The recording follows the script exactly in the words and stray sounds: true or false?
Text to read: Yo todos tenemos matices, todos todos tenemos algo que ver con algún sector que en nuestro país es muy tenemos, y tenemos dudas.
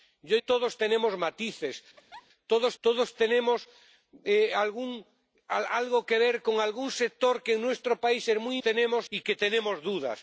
false